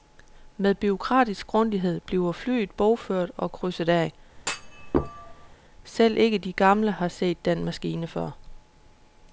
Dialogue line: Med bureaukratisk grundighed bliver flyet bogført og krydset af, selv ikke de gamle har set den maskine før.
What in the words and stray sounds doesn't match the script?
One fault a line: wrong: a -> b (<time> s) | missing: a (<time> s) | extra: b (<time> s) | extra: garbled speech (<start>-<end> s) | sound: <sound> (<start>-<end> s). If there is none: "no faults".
sound: thud (4.4-5.6 s)